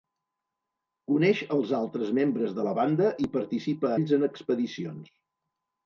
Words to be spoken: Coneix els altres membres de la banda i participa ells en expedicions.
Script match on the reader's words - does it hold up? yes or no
yes